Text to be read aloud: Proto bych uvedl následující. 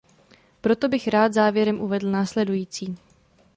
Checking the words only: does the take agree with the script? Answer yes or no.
no